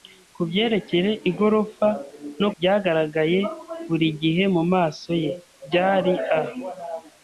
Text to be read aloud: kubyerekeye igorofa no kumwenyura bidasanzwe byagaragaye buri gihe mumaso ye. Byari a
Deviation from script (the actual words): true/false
true